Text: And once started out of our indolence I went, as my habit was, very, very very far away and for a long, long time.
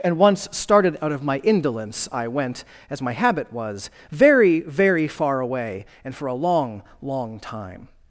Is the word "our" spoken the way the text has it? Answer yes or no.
no